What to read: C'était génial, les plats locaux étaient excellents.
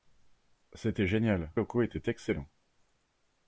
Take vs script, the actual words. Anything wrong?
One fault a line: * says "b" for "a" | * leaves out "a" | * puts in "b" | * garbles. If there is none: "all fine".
* leaves out "les plats"